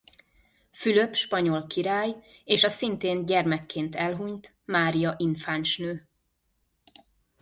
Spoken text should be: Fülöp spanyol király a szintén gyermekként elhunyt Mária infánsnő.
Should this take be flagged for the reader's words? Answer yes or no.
yes